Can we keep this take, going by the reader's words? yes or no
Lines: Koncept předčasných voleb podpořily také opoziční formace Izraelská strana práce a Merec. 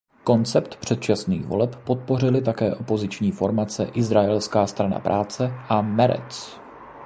yes